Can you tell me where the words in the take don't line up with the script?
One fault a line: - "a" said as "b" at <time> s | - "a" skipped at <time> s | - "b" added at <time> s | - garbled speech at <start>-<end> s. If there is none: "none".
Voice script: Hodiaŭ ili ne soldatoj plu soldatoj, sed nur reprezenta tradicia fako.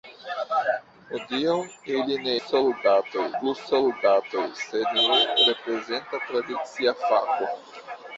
none